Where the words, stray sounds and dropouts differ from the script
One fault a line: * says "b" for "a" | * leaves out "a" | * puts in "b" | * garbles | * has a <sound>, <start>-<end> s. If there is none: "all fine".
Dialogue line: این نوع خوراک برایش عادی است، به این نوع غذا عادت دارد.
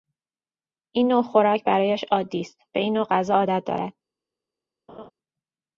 * has a laugh, 4.9-5.1 s